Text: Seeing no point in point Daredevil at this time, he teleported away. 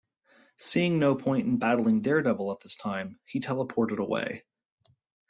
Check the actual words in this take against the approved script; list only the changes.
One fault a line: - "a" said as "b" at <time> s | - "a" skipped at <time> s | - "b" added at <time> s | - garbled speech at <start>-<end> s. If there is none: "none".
- "point" said as "battling" at 1.6 s